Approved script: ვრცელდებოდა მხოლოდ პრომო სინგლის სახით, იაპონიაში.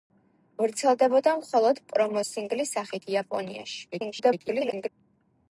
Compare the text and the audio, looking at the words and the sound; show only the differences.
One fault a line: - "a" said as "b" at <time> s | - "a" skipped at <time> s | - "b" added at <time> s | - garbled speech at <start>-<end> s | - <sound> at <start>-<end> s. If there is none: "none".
- garbled speech at 3.9-4.9 s